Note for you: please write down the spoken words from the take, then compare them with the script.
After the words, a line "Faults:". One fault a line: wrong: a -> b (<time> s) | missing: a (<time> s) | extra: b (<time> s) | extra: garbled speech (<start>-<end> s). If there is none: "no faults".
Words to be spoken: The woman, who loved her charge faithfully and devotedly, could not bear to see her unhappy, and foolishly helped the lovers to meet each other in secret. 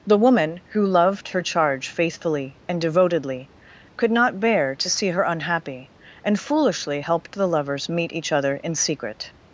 The woman, who loved her charge faithfully and devotedly, could not bear to see her unhappy, and foolishly helped the lovers meet each other in secret.
Faults:
missing: to (7.9 s)